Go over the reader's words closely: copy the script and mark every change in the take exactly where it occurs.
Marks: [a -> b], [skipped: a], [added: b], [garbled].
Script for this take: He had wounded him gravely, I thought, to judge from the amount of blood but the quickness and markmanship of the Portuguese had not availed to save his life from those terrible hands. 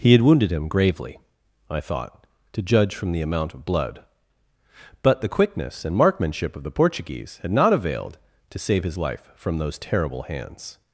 He had wounded him gravely, I thought, to judge from the amount of blood but the quickness and markmanship of the Portuguese had not availed to save his life from those terrible hands.